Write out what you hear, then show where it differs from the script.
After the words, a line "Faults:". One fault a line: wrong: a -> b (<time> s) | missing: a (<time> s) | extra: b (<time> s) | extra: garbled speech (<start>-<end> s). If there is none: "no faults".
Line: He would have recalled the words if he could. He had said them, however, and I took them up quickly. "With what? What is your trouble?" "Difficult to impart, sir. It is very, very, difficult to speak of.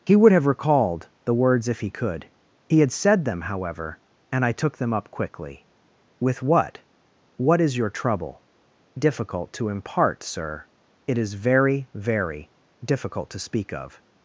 He would have recalled the words if he could. He had said them, however, and I took them up quickly. "With what? What is your trouble?" "Difficult to impart, sir. It is very, very, difficult to speak of.
Faults:
no faults